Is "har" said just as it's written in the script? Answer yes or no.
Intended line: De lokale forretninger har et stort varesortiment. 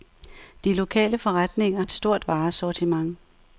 no